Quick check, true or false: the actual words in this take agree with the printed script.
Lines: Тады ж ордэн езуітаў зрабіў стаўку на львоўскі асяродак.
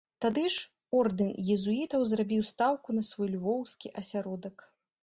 false